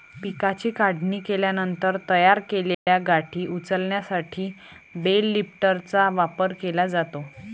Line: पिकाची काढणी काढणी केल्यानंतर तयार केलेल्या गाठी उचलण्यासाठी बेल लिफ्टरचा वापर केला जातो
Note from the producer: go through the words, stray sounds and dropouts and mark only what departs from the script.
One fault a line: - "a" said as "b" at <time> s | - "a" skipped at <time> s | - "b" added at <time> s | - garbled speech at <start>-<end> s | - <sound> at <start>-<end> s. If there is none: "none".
- "काढणी" skipped at 1.2 s
- dropout at 2.7-2.9 s